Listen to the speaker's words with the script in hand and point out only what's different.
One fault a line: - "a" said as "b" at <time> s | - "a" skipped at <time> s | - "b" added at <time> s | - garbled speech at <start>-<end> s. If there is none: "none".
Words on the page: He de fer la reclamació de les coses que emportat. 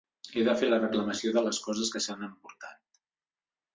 - "s'han" added at 2.1 s